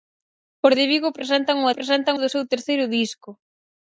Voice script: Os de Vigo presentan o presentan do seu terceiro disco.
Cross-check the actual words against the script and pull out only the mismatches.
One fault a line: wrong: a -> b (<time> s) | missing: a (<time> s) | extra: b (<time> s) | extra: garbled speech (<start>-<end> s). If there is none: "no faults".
no faults